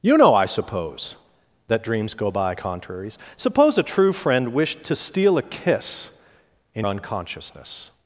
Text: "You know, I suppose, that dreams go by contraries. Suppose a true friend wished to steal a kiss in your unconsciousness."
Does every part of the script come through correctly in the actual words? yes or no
no